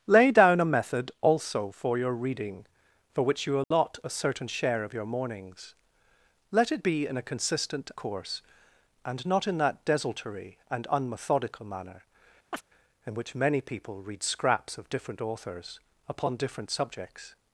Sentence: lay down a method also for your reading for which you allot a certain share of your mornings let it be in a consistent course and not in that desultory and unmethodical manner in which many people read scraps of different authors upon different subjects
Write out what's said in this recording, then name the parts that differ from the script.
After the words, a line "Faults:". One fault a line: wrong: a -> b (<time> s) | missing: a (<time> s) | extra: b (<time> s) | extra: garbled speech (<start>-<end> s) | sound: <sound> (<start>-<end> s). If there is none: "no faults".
lay down a method also for your reading for which you allot a certain share of your mornings let it be in a consistent course and not in that desultory and unmethodical manner in which many people read scraps of different authors upon different subjects
Faults:
sound: dropout (3.6-3.7 s)
sound: chirp (12.5-12.6 s)